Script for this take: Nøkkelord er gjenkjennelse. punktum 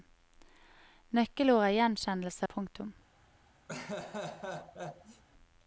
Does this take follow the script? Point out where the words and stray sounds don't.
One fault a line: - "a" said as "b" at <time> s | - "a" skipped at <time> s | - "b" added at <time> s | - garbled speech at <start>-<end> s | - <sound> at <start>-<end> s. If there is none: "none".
- laugh at 3.7-5.2 s